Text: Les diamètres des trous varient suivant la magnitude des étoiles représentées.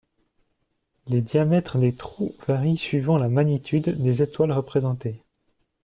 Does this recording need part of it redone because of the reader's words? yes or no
no